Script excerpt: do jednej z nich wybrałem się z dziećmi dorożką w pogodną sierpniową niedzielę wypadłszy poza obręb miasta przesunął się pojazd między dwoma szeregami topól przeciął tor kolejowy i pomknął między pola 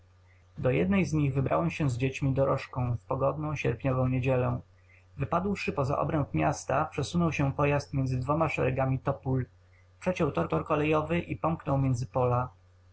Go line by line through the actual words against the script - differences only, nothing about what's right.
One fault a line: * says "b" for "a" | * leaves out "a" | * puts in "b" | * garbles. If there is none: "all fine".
* puts in "tor"